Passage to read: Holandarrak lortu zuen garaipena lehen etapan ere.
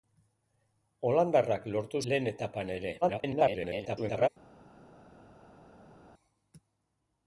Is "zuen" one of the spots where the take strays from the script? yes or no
yes